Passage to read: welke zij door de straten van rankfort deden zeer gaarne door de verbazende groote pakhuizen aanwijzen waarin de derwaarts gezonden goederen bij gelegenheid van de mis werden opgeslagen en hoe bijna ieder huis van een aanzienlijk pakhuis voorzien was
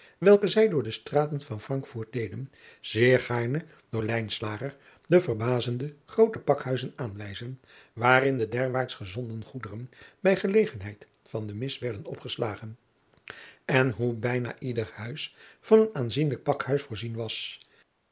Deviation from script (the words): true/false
false